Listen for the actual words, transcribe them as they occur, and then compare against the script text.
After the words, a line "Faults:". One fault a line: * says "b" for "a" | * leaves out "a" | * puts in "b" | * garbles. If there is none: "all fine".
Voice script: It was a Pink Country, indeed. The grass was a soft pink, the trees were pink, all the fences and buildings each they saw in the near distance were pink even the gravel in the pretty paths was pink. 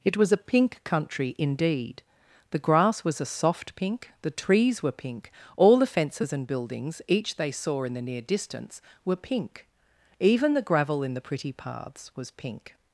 It was a Pink Country, indeed. The grass was a soft pink, the trees were pink, all the fences and buildings each they saw in the near distance were pink even the gravel in the pretty paths was pink.
Faults:
all fine